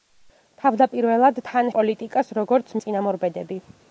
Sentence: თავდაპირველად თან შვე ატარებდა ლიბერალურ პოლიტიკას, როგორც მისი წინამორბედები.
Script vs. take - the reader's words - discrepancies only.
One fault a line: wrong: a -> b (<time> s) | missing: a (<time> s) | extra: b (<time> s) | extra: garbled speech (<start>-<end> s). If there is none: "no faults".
missing: შვე ატარებდა ლიბერალურ (1.7 s)
missing: მისი (2.7 s)